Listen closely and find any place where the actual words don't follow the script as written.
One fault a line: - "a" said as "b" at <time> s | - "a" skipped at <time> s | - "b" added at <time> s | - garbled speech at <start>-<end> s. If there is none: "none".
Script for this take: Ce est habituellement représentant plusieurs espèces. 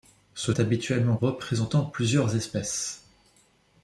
none